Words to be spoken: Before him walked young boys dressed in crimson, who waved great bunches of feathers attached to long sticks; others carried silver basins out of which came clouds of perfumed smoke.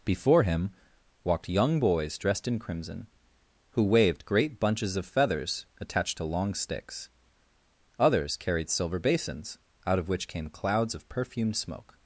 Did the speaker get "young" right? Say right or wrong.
right